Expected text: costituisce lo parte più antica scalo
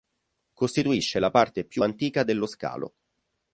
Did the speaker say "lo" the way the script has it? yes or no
no